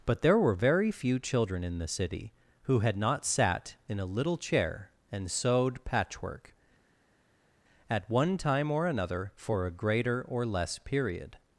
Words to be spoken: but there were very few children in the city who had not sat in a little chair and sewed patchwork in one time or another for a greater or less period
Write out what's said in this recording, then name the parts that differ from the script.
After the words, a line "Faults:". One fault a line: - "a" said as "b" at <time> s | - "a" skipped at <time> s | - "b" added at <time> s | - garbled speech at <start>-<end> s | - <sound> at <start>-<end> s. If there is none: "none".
but there were very few children in the city who had not sat in a little chair and sewed patchwork at one time or another for a greater or less period
Faults:
- "in" said as "at" at 7.9 s